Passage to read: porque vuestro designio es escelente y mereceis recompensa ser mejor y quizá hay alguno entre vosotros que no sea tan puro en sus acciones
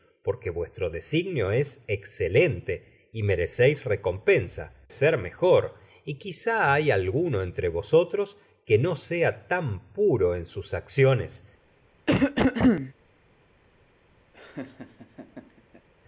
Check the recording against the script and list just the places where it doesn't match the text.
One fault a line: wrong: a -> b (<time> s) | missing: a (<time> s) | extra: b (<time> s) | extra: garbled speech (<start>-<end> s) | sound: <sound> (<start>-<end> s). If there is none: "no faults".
sound: cough (12.1-12.9 s)
sound: laugh (14.3-15.9 s)